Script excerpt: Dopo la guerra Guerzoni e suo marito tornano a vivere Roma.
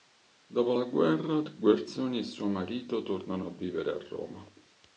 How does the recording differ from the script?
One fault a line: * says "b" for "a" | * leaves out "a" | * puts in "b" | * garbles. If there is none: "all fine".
* puts in "a"